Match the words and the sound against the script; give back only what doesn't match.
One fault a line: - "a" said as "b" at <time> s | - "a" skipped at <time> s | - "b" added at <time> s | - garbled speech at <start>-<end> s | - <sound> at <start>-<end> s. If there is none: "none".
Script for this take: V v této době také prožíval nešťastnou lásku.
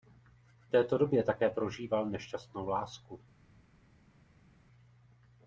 none